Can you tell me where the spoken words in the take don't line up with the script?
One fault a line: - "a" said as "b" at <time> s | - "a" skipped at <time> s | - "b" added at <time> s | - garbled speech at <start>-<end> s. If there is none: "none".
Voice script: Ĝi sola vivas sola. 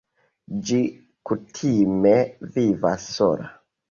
- "sola" said as "kutime" at 1.3 s